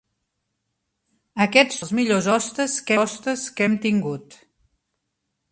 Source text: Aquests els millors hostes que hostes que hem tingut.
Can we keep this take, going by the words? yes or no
yes